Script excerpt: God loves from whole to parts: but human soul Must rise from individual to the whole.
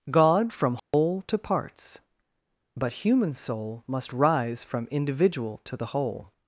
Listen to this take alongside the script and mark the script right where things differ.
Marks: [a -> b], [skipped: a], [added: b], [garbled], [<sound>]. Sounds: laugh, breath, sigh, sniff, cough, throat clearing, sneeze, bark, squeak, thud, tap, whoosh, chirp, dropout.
God [skipped: loves] from whole [dropout] to parts: but human soul Must rise from individual to the whole.